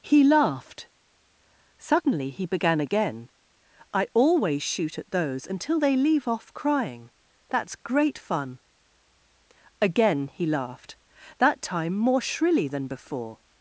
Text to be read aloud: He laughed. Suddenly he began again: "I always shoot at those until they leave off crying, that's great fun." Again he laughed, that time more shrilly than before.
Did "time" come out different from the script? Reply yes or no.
no